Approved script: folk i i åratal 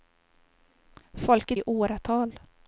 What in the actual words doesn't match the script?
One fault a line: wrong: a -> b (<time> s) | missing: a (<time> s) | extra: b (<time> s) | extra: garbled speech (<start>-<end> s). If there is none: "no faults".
no faults